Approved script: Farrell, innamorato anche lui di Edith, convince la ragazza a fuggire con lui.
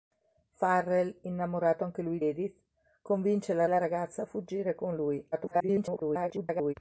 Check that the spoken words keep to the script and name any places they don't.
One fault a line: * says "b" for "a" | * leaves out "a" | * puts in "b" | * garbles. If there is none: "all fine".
* leaves out "di"
* puts in "la"
* garbles